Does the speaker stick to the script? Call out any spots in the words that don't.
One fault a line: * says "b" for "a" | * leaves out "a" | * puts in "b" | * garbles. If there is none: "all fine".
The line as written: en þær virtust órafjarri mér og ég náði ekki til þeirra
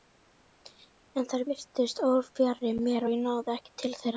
all fine